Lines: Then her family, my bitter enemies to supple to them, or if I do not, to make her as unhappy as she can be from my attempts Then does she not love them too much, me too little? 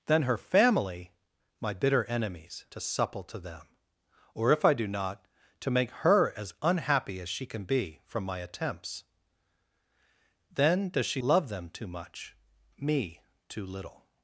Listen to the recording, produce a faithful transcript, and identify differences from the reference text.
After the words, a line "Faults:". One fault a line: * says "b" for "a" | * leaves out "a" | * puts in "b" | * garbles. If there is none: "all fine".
Then her family, my bitter enemies to supple to them, or if I do not, to make her as unhappy as she can be from my attempts Then does she love them too much, me too little?
Faults:
* leaves out "not"